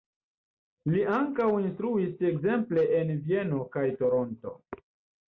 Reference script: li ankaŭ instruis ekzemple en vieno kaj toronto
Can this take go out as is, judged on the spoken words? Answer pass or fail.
pass